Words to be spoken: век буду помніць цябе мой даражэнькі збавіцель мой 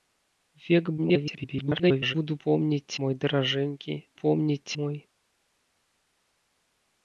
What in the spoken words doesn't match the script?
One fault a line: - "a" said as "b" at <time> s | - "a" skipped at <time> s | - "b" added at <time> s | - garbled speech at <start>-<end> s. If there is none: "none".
- garbled speech at 1.0-2.2 s
- "цябе" skipped at 2.9 s
- "збавіцель" said as "помніць" at 4.2 s